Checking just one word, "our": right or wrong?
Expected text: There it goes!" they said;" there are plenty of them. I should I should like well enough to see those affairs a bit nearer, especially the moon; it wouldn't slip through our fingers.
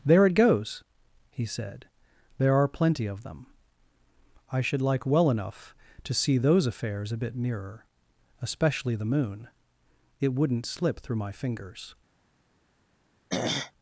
wrong